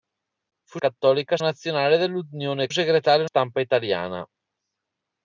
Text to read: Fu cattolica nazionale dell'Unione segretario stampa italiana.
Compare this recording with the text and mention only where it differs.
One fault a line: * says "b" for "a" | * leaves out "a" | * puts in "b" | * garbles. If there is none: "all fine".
all fine